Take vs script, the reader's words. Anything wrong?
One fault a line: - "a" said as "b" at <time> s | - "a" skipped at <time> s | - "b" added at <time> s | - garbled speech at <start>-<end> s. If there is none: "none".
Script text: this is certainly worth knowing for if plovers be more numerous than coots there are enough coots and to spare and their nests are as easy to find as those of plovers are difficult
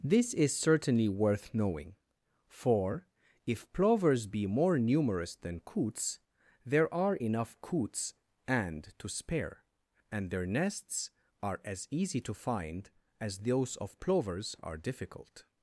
none